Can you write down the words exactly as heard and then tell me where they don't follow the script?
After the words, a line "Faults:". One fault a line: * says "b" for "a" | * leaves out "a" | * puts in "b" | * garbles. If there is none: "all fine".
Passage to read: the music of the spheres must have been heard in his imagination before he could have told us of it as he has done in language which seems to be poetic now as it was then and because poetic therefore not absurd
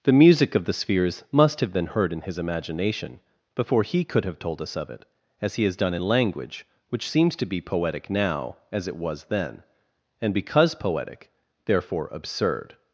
the music of the spheres must have been heard in his imagination before he could have told us of it as he has done in language which seems to be poetic now as it was then and because poetic therefore absurd
Faults:
* leaves out "not"